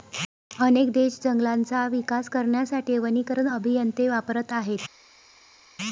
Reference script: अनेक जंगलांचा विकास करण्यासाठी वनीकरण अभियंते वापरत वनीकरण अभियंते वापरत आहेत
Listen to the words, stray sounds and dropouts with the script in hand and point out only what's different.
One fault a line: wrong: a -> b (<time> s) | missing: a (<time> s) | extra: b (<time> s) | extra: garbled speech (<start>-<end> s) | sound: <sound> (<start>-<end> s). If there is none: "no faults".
extra: देश (0.9 s)
missing: वनीकरण अभियंते वापरत (4.5 s)